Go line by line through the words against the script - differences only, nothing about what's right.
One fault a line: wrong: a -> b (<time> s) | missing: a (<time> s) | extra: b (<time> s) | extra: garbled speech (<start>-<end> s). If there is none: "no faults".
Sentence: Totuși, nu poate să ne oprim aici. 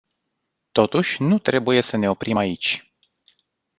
wrong: poate -> trebuie (1.4 s)